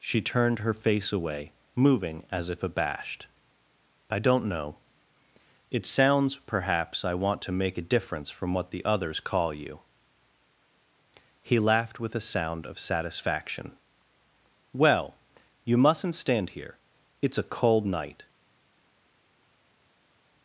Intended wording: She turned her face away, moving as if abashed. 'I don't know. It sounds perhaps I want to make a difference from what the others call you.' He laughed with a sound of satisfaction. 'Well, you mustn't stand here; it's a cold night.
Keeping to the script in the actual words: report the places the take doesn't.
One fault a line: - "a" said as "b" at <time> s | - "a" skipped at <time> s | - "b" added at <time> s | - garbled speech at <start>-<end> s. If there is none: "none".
none